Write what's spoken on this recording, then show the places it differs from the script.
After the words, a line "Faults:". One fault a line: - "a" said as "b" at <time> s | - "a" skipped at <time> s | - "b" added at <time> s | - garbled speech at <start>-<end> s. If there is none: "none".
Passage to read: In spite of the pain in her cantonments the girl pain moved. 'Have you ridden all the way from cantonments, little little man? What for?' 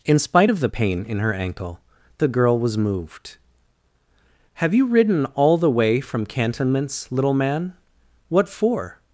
In spite of the pain in her ankle the girl was moved. 'Have you ridden all the way from cantonments, little man? What for?'
Faults:
- "cantonments" said as "ankle" at 1.3 s
- "pain" said as "was" at 2.6 s
- "little" skipped at 7.3 s